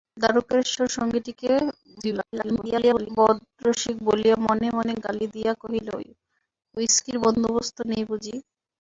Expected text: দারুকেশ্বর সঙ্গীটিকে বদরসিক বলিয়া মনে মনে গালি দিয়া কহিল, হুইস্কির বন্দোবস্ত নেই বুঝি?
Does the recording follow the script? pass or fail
fail